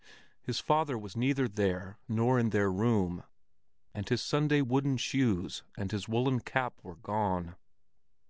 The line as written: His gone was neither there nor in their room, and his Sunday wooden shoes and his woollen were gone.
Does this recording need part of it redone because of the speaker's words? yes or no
yes